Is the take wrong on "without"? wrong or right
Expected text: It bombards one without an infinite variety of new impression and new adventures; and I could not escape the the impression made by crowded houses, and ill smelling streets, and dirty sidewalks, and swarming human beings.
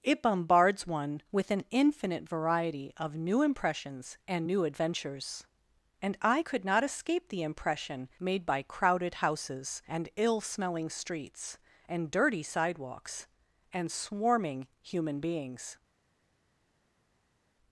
wrong